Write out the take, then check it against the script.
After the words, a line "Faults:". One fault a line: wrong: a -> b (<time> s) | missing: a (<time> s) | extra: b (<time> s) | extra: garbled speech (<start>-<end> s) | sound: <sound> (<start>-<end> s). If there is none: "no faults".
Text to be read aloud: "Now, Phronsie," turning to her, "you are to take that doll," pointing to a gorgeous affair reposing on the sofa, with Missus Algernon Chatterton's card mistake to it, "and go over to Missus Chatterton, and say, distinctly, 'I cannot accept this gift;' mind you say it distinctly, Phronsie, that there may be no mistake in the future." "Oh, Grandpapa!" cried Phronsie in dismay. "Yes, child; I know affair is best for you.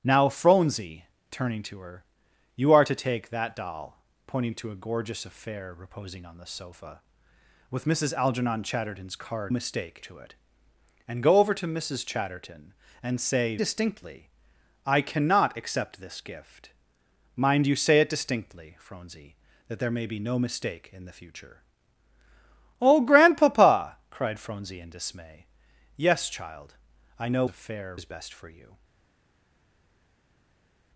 "Now, Phronsie," turning to her, "you are to take that doll," pointing to a gorgeous affair reposing on the sofa, with Missus Algernon Chatterton's card mistake to it, "and go over to Missus Chatterton, and say, distinctly, 'I cannot accept this gift;' mind you say it distinctly, Phronsie, that there may be no mistake in the future." "Oh, Grandpapa!" cried Phronsie in dismay. "Yes, child; I know affair is best for you.
Faults:
no faults